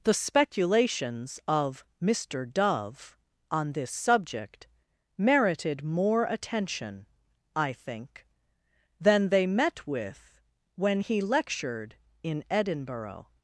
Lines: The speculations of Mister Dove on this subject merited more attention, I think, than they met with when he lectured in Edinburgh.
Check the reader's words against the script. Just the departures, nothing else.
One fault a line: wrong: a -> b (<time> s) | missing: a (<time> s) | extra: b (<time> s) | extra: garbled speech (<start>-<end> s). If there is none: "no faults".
no faults